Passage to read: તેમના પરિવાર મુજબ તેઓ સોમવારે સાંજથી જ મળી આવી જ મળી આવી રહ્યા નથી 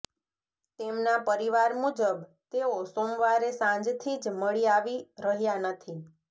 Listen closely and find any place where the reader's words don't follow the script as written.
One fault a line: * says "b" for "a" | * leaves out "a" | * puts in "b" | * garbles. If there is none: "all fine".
* leaves out "જ મળી આવી"